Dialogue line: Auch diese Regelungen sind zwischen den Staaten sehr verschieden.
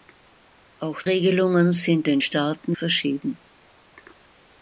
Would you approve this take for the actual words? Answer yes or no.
no